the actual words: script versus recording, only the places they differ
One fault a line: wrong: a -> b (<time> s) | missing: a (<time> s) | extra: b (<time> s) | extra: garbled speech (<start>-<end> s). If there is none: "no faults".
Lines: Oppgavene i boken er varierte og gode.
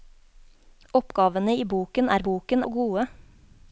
wrong: varierte -> boken (2.3 s)